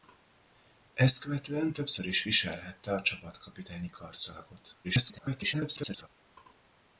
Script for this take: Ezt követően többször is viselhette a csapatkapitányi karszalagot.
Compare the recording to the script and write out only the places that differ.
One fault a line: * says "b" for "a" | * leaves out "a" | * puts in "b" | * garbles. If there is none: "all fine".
* garbles